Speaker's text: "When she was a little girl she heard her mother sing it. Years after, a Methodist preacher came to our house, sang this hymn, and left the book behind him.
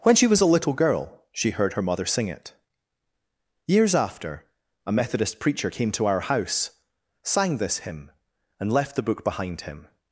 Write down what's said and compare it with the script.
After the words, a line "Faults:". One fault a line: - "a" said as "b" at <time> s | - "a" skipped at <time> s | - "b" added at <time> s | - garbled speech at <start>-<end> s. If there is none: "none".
"When she was a little girl she heard her mother sing it. Years after, a Methodist preacher came to our house, sang this hymn, and left the book behind him.
Faults:
none